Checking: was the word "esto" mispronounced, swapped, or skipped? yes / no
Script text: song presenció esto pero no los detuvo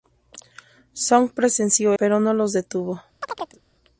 yes